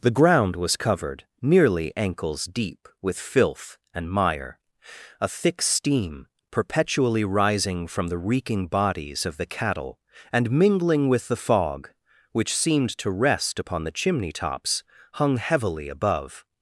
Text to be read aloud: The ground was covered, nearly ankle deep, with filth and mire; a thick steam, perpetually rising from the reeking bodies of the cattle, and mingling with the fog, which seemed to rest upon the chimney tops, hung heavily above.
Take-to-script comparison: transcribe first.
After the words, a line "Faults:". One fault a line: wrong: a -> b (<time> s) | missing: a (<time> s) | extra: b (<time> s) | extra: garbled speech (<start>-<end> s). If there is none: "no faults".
The ground was covered, nearly ankles deep, with filth and mire; a thick steam, perpetually rising from the reeking bodies of the cattle, and mingling with the fog, which seemed to rest upon the chimney tops, hung heavily above.
Faults:
wrong: ankle -> ankles (1.9 s)